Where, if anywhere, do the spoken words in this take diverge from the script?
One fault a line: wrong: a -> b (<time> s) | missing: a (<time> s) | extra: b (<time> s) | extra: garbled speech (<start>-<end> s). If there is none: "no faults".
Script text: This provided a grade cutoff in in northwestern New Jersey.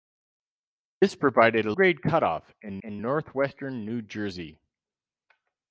no faults